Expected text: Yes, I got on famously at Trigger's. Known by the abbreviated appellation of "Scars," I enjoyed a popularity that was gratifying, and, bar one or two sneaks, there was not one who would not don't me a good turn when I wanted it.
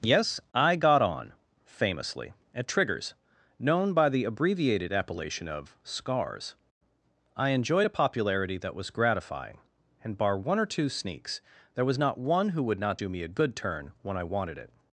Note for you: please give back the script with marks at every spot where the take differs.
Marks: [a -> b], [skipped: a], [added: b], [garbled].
Yes, I got on famously at Trigger's. Known by the abbreviated appellation of "Scars," I enjoyed a popularity that was gratifying, and, bar one or two sneaks, there was not one who would not [don't -> do] me a good turn when I wanted it.